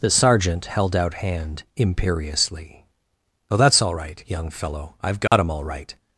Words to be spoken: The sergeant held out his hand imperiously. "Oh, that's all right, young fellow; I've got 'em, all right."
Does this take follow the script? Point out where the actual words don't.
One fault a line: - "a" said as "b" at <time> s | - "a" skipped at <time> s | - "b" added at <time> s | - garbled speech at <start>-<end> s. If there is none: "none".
- "his" skipped at 1.1 s